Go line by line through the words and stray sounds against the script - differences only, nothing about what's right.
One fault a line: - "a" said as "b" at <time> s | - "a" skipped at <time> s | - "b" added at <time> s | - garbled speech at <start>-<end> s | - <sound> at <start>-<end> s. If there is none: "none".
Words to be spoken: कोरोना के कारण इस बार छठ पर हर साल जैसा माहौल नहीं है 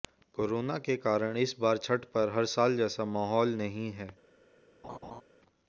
- laugh at 4.8-5.2 s